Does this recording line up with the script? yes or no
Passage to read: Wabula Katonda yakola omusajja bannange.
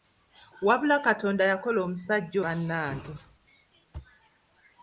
yes